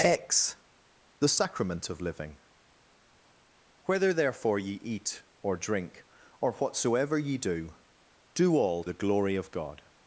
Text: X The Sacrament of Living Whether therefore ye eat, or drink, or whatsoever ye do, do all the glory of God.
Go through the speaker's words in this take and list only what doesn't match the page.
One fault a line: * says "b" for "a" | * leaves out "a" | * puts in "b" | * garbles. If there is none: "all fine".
all fine